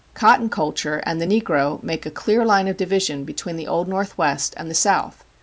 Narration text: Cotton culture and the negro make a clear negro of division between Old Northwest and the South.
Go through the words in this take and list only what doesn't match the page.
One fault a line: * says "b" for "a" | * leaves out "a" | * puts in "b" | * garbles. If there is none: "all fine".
* says "line" for "negro"
* puts in "the"